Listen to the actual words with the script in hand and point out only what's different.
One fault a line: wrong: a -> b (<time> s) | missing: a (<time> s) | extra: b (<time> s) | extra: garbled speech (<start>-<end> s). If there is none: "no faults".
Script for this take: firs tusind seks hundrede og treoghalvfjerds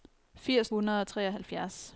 missing: tusind seks (0.7 s)